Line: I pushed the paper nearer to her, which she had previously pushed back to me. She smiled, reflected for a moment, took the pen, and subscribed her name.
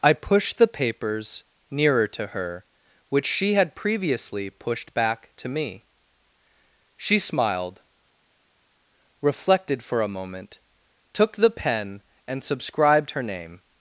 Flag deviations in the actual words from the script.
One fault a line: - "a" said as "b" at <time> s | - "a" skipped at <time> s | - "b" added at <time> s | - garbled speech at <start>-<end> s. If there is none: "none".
- "paper" said as "papers" at 0.7 s